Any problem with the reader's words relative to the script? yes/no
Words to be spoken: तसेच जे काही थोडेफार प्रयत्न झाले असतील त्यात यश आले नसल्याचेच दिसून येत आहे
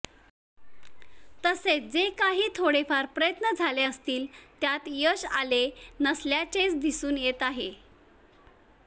no